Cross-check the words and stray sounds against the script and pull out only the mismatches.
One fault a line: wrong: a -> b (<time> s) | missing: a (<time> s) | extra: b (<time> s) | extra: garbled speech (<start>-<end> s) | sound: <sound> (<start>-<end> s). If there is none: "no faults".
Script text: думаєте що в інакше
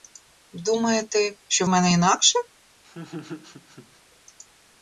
extra: мене (1.7 s)
sound: laugh (2.8-4.0 s)